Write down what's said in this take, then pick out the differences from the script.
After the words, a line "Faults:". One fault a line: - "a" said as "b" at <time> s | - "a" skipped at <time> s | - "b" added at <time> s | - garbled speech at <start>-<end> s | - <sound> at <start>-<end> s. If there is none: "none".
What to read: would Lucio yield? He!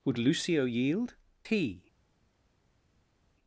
would Lucio yield? He!
Faults:
none